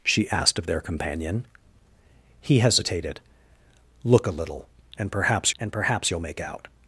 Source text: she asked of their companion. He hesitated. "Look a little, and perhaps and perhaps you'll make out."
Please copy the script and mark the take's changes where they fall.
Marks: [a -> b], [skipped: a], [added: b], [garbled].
she asked of their companion. He hesitated. "Look a little, and perhaps and perhaps you'll make out."